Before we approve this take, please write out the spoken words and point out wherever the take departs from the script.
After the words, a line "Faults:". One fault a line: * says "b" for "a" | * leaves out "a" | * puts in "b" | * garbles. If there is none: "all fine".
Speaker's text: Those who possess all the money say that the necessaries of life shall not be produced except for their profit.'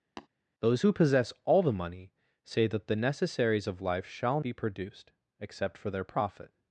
Those who possess all the money say that the necessaries of life shall be produced except for their profit.'
Faults:
* leaves out "not"